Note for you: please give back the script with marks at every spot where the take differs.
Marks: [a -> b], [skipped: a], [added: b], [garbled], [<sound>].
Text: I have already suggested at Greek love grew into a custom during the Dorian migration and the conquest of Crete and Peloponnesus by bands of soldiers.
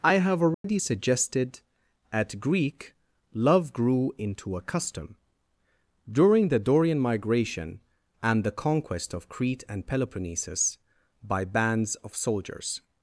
I have already [dropout] suggested at Greek love grew into a custom during the Dorian migration and the conquest of Crete and Peloponnesus by bands of soldiers.